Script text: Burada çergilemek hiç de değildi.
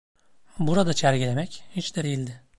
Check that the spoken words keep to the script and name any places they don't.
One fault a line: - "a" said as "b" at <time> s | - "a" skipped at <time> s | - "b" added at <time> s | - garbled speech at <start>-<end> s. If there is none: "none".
none